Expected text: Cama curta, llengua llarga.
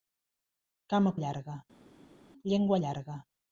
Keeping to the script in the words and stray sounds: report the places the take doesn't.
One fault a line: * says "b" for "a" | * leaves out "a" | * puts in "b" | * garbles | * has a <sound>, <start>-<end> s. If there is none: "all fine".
* says "llarga" for "curta"